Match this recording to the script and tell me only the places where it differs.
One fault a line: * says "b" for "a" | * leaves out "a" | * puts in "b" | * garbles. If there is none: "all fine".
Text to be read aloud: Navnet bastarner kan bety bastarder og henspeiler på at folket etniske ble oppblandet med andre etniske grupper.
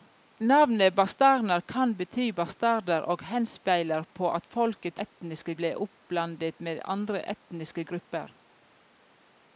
all fine